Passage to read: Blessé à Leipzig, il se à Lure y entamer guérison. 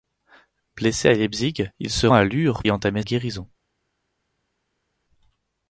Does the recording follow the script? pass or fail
pass